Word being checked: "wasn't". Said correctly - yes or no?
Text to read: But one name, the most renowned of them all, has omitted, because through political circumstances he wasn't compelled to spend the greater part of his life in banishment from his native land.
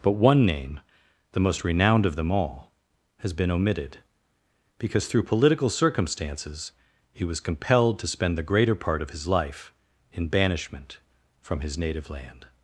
no